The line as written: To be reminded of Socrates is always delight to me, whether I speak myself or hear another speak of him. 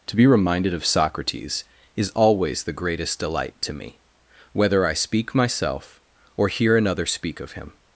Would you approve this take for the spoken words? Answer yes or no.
no